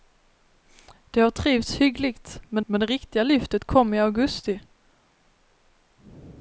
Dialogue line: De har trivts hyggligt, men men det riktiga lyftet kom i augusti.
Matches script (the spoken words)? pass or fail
pass